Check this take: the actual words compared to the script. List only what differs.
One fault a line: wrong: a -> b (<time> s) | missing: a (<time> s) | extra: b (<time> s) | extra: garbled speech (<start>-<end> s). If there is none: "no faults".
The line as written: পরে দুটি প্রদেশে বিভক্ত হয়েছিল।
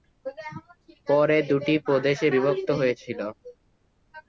no faults